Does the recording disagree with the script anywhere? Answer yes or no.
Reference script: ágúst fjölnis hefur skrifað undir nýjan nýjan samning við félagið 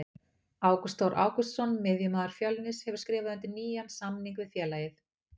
yes